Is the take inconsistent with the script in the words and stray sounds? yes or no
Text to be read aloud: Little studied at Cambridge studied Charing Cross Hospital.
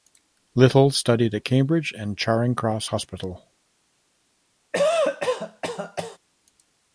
yes